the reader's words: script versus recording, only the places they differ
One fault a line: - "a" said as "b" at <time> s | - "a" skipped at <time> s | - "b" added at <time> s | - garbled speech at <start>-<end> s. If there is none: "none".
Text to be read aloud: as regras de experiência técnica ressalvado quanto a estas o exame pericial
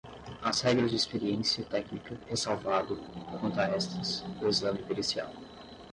none